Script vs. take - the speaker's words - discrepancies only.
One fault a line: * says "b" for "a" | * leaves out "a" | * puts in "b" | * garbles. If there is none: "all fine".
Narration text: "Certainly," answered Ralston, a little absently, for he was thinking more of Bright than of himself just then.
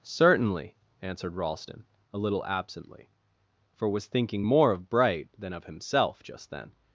* leaves out "he"